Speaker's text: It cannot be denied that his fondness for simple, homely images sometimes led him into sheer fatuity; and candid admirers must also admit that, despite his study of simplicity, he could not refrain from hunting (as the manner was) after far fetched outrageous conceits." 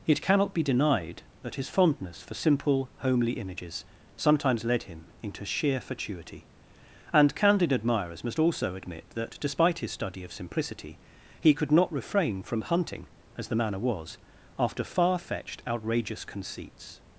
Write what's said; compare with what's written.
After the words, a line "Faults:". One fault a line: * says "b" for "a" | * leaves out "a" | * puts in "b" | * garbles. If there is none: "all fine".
It cannot be denied that his fondness for simple, homely images sometimes led him into sheer fatuity; and candid admirers must also admit that, despite his study of simplicity, he could not refrain from hunting (as the manner was) after far fetched outrageous conceits."
Faults:
all fine